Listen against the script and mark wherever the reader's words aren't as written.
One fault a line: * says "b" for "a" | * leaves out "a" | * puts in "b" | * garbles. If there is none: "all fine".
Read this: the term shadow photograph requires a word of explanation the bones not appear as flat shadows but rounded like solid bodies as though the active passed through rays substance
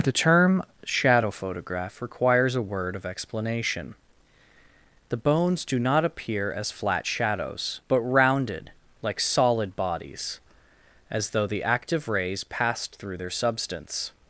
* puts in "do"
* puts in "rays"
* says "their" for "rays"